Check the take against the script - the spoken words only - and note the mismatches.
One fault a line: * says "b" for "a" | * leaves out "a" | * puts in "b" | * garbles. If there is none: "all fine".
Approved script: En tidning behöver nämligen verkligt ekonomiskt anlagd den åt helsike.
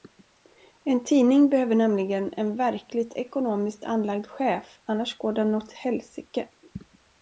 * puts in "en"
* puts in "chef annars går"